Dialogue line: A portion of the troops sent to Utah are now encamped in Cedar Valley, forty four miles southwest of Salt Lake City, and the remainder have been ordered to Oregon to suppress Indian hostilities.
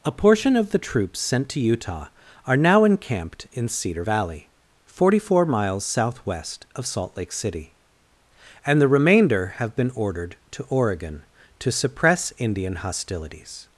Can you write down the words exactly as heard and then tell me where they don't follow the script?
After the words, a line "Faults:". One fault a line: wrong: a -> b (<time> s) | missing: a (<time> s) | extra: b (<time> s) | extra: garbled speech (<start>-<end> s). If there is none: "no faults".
A portion of the troops sent to Utah are now encamped in Cedar Valley, forty four miles southwest of Salt Lake City, and the remainder have been ordered to Oregon to suppress Indian hostilities.
Faults:
no faults